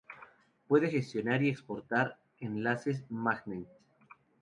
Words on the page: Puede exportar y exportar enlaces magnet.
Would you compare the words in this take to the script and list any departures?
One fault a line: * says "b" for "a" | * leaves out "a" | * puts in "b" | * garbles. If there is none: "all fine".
* says "gestionar" for "exportar"